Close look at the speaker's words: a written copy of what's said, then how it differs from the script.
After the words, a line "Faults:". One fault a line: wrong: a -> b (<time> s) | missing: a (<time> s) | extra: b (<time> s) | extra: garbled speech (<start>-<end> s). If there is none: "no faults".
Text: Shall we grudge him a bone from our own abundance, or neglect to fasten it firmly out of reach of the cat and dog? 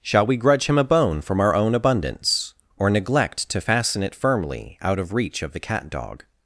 Shall we grudge him a bone from our own abundance, or neglect to fasten it firmly out of reach of the cat dog?
Faults:
missing: and (5.9 s)